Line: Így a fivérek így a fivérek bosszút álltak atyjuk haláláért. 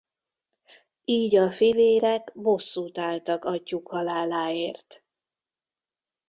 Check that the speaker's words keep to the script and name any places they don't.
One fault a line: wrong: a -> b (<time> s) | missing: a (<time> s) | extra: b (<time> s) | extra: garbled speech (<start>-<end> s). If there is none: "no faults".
missing: így a fivérek (2.3 s)